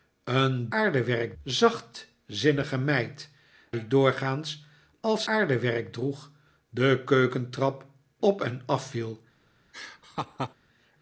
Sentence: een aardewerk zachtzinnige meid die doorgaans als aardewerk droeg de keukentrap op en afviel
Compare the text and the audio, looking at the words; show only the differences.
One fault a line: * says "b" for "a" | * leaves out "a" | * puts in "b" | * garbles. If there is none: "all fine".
all fine